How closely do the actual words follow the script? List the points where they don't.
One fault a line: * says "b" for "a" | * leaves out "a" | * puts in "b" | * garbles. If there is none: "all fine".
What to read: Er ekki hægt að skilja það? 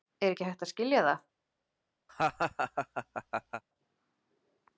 all fine